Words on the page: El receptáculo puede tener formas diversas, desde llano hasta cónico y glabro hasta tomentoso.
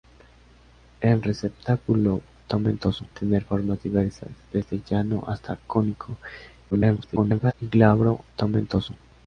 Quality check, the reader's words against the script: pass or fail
fail